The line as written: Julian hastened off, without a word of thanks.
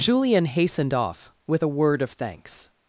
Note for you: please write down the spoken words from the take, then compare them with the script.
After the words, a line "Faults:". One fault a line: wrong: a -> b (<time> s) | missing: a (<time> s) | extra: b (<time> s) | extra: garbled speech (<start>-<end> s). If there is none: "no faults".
Julian hastened off, with a word of thanks.
Faults:
wrong: without -> with (1.4 s)